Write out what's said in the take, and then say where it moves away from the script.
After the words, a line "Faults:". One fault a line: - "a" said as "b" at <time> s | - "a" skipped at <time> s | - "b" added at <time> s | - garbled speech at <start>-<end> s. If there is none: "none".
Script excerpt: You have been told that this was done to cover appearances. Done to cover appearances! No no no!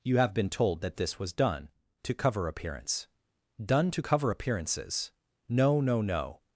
You have been told that this was done to cover appearance. Done to cover appearances! No no no!
Faults:
- "appearances" said as "appearance" at 2.5 s